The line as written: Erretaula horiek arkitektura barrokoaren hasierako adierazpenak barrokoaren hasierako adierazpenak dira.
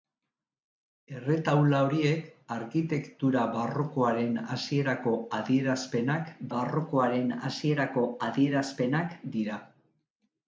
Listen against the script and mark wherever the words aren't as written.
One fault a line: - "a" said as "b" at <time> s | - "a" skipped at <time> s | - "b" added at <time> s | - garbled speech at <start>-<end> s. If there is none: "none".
none